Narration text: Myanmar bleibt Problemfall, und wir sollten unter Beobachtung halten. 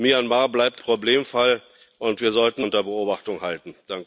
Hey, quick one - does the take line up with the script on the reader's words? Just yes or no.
yes